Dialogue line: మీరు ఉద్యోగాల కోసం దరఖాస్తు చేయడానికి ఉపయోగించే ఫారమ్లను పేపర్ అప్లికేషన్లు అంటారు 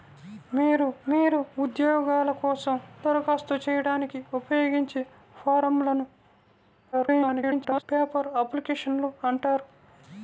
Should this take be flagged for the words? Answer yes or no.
yes